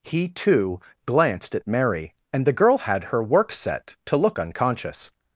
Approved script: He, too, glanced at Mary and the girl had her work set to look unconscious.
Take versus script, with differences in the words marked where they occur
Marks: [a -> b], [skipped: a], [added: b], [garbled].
He, too, glanced at Mary and the girl had her work set to look unconscious.